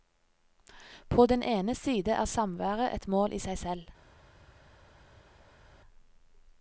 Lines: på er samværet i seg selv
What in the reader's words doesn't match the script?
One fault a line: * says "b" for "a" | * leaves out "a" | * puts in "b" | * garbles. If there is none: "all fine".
* puts in "den ene side"
* puts in "et mål"